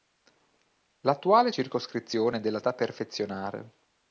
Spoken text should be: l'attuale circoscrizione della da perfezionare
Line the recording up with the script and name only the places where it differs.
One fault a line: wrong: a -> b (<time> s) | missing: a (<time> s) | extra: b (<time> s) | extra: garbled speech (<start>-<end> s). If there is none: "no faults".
no faults